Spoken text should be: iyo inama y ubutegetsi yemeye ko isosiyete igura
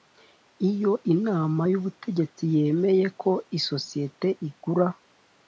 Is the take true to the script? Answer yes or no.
yes